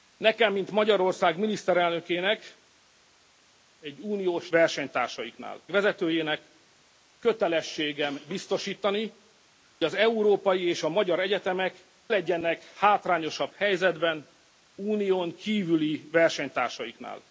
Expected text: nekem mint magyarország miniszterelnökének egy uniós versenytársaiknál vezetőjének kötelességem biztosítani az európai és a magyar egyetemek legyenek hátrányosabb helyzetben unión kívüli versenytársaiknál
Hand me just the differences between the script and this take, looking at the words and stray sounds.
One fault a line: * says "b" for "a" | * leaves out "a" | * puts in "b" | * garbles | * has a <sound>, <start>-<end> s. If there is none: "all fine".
all fine